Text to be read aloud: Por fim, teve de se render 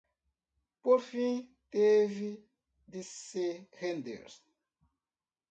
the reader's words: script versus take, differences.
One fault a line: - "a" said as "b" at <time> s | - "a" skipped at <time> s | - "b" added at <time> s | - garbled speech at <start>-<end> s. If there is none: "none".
none